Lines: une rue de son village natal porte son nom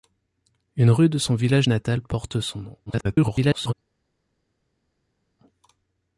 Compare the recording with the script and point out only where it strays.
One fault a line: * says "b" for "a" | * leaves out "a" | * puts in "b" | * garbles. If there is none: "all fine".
* garbles